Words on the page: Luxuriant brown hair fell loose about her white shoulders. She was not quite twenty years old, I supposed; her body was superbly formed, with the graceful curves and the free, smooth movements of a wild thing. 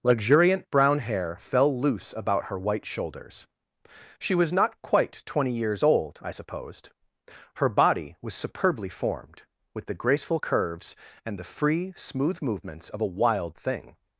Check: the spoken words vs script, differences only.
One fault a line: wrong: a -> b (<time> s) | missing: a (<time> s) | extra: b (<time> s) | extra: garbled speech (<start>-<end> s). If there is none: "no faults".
no faults